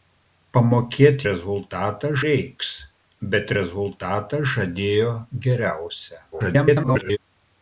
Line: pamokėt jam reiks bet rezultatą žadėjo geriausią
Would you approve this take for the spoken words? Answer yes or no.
no